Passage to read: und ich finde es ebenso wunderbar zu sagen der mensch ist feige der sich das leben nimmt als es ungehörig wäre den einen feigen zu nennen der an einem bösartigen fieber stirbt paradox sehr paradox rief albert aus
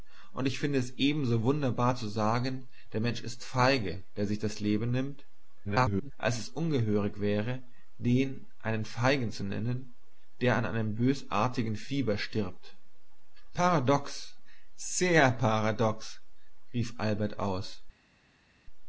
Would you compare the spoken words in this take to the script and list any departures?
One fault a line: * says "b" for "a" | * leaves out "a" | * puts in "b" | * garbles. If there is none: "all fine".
* garbles